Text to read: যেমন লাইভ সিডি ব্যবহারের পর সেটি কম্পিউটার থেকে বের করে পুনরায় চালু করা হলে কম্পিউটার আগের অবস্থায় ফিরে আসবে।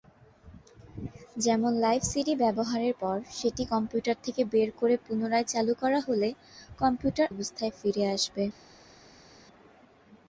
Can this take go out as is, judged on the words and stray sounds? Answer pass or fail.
fail